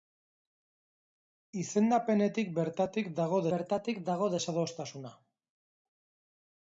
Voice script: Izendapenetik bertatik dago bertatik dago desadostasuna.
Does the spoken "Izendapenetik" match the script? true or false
true